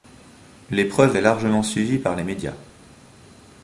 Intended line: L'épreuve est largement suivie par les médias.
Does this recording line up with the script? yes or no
yes